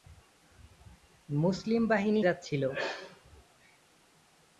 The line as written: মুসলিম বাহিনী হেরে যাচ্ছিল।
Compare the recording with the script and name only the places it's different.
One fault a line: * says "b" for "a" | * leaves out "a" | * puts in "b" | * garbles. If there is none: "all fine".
* leaves out "হেরে"